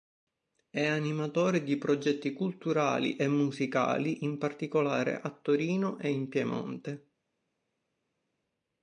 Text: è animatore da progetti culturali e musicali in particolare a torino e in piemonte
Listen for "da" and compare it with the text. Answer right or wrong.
wrong